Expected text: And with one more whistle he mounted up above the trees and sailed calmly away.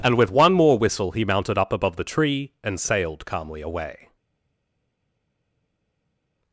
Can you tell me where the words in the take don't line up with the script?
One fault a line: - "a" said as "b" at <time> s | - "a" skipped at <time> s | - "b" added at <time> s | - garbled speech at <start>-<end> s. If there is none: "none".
- "trees" said as "tree" at 2.0 s